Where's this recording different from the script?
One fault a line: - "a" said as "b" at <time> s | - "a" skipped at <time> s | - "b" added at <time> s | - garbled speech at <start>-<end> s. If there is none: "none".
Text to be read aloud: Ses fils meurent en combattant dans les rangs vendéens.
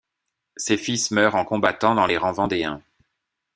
none